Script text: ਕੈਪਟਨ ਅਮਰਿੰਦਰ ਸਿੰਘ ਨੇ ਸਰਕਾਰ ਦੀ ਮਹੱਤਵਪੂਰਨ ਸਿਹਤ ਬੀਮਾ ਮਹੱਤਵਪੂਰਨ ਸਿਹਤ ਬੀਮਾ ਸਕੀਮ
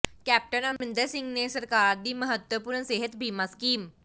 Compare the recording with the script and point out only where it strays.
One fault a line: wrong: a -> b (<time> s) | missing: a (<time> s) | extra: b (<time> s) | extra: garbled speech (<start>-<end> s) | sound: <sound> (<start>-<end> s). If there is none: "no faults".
sound: dropout (0.8-0.8 s)
missing: ਮਹੱਤਵਪੂਰਨ ਸਿਹਤ ਬੀਮਾ (3.4 s)